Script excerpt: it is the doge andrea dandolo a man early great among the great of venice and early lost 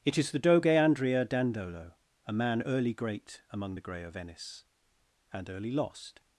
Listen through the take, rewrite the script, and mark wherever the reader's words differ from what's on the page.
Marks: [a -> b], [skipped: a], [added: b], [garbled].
it is the doge andrea dandolo a man early great among the [great -> grey] of venice and early lost